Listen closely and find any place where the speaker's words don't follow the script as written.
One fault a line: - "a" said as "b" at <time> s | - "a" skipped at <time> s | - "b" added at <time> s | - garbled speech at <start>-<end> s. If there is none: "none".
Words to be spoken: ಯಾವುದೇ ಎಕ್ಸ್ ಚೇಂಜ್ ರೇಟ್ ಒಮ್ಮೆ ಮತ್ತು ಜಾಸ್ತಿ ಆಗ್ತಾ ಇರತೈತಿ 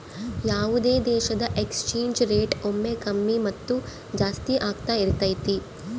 - "ದೇಶದ" added at 1.1 s
- "ಕಮ್ಮಿ" added at 3.0 s